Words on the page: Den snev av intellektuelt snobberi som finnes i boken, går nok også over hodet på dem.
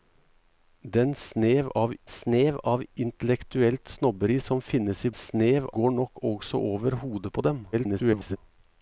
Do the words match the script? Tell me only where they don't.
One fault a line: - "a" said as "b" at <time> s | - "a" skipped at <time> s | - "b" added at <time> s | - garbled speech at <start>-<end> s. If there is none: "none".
- "snev av" added at 2.1 s
- "boken" said as "snev" at 5.2 s
- garbled speech at 7.7-8.4 s